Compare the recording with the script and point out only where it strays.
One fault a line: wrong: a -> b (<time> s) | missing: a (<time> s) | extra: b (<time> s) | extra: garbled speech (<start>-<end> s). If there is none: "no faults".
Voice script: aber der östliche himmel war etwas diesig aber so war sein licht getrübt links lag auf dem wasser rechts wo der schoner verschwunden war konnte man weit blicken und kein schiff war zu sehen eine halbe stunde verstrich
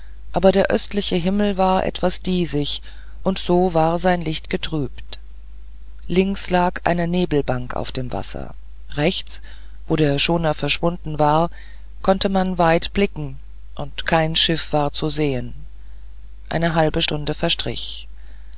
wrong: aber -> und (3.2 s)
extra: eine nebelbank (6.8 s)